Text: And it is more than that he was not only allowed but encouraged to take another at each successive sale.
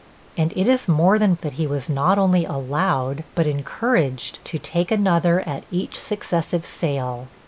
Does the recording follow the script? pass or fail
pass